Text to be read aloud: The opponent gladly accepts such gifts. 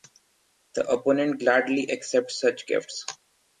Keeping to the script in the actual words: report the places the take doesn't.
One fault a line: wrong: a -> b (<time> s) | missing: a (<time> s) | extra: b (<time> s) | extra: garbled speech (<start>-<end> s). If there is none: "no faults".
no faults